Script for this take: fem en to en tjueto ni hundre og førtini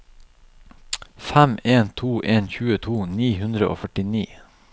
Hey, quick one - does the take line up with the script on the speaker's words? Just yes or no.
yes